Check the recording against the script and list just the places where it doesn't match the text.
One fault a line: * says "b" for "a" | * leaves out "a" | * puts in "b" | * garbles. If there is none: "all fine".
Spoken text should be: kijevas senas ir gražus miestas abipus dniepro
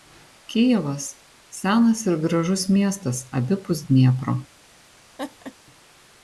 all fine